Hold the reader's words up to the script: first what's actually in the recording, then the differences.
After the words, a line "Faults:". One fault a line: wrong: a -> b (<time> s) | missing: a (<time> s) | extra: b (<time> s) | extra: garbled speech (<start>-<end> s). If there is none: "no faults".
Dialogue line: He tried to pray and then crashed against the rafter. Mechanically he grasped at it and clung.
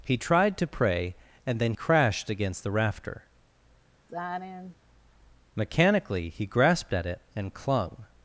He tried to pray and then crashed against the rafter. Mechanically he grasped at it and clung.
Faults:
no faults